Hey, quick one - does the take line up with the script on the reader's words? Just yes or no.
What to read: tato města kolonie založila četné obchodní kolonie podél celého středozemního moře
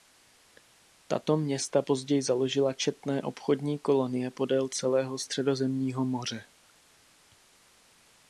no